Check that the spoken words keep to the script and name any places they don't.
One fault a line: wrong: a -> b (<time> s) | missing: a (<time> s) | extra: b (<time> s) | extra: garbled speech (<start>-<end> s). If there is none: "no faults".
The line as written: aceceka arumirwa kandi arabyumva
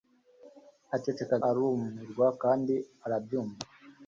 no faults